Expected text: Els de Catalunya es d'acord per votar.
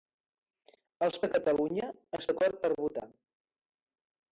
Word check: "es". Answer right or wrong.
right